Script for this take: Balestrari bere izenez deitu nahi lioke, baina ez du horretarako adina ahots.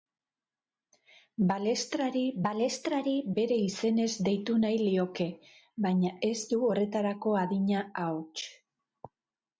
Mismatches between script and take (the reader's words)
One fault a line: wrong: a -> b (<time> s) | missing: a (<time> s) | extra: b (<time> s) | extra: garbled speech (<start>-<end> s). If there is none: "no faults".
extra: balestrari (2.5 s)